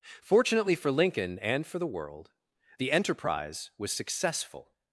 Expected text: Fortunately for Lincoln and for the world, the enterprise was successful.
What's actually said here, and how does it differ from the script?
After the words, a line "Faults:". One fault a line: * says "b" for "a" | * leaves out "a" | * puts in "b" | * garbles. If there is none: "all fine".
Fortunately for Lincoln and for the world, the enterprise was successful.
Faults:
all fine